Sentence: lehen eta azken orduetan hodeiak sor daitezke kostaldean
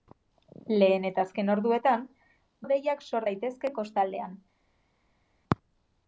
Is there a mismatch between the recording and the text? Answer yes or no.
no